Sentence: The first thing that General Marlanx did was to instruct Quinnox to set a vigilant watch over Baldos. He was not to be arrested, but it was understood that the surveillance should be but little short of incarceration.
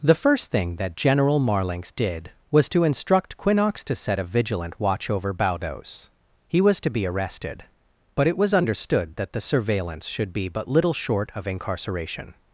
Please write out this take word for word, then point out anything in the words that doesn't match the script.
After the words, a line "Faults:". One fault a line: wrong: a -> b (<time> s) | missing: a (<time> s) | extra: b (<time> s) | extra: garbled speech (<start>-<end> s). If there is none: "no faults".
The first thing that General Marlanx did was to instruct Quinnox to set a vigilant watch over Baldos. He was to be arrested, but it was understood that the surveillance should be but little short of incarceration.
Faults:
missing: not (6.8 s)